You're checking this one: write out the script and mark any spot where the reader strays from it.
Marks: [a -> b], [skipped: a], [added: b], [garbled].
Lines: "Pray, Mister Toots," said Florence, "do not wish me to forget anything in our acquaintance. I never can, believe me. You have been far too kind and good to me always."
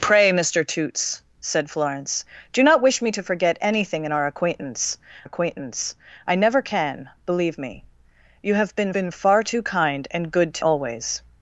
"Pray, Mister Toots," said Florence, "do not wish me to forget anything in our acquaintance. [added: acquaintance] I never can, believe me. You have been [added: been] far too kind and good to [skipped: me] always."